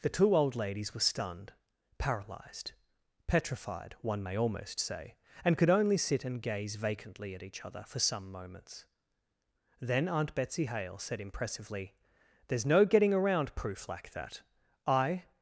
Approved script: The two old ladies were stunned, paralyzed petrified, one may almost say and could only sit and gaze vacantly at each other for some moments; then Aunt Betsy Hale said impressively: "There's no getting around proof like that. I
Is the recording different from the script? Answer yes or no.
no